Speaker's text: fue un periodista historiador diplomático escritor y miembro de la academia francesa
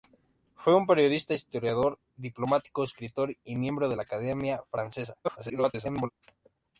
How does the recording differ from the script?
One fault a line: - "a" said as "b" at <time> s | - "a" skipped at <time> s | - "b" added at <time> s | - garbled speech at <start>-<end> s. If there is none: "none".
- garbled speech at 5.2-6.1 s